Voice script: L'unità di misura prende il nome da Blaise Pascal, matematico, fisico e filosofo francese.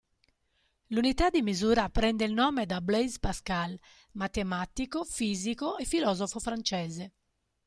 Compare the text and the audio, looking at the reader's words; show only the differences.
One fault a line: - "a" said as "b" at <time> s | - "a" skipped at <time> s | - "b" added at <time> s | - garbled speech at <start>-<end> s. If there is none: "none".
none